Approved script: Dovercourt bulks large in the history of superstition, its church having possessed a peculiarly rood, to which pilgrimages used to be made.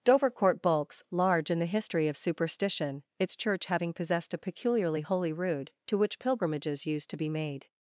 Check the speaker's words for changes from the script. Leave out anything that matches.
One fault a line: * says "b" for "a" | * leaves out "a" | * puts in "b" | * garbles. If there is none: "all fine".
* puts in "holy"